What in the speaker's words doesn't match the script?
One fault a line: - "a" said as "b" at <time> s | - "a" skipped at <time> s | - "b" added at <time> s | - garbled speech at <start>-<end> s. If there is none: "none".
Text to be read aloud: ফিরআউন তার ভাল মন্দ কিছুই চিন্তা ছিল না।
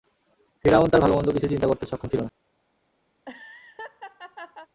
- "করতে সক্ষম" added at 1.7 s